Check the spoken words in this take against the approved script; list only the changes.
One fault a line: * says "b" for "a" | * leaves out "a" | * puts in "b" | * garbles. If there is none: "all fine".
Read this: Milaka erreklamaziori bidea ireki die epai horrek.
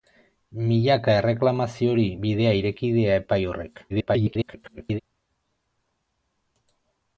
* garbles